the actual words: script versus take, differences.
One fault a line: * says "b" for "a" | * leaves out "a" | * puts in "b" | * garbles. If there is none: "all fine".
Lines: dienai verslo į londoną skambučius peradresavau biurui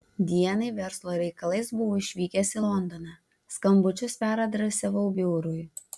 * puts in "reikalais buvau išvykęs"